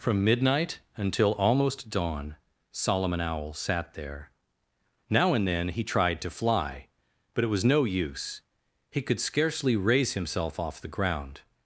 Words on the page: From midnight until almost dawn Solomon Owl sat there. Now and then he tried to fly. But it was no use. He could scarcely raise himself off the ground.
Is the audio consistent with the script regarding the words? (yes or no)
yes